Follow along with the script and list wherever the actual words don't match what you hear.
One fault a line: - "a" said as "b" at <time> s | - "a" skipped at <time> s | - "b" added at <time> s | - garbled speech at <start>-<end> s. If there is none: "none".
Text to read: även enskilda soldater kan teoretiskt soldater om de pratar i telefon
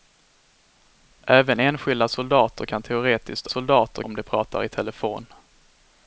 none